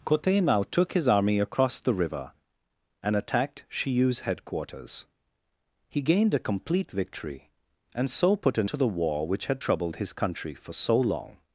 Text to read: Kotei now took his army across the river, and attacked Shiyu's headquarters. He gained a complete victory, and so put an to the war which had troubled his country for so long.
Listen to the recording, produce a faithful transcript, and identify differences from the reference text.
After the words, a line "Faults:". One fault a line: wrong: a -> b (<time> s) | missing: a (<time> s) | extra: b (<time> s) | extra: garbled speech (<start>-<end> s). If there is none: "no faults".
Kotei now took his army across the river, and attacked Shiyu's headquarters. He gained a complete victory, and so put an to the war which had troubled his country for so long.
Faults:
no faults